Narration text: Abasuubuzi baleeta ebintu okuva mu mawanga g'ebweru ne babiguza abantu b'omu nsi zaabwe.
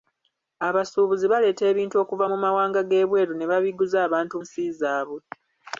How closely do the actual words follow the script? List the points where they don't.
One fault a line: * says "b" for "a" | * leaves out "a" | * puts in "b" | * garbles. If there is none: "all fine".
* leaves out "b'omu"